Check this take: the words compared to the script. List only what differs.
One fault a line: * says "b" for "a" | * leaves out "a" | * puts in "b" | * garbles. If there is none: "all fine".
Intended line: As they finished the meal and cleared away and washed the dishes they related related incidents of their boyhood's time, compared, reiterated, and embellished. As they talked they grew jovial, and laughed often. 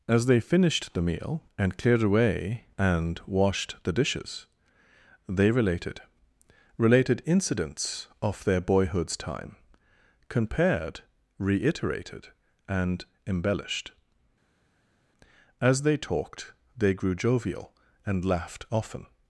all fine